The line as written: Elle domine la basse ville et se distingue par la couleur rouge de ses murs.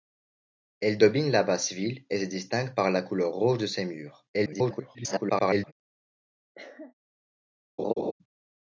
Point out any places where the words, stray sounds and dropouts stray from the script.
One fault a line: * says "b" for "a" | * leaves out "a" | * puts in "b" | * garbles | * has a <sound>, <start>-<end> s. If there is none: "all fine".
* garbles
* has a cough, 6.5-6.9 s
* has a laugh, 7.8-8.1 s